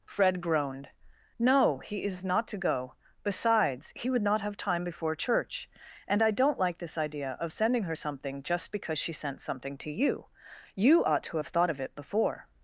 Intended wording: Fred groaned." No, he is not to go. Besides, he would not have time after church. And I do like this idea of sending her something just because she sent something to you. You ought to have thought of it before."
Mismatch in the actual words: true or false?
true